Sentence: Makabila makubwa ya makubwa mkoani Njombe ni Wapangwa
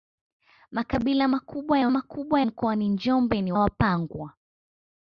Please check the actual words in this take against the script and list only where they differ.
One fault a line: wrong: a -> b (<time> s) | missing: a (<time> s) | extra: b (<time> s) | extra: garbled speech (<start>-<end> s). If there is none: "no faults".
no faults